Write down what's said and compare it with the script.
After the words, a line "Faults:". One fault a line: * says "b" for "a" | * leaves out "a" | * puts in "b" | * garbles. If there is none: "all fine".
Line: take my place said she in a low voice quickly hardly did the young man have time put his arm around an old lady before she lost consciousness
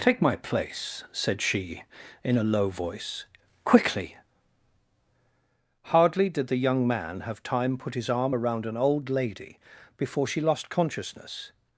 take my place said she in a low voice quickly hardly did the young man have time put his arm around an old lady before she lost consciousness
Faults:
all fine